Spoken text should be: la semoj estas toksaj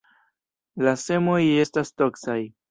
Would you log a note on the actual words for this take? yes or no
no